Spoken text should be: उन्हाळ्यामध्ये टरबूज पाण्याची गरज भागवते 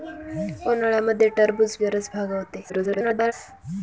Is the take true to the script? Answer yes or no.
no